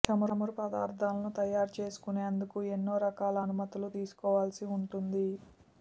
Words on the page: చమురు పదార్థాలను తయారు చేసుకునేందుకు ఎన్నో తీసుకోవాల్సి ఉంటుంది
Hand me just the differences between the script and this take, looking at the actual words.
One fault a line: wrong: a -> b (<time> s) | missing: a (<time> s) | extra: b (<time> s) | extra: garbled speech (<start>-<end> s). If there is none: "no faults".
extra: రకాల అనుమతులు (3.1 s)